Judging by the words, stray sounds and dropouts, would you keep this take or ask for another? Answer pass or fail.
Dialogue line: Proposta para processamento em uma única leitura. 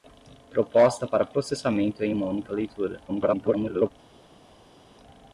fail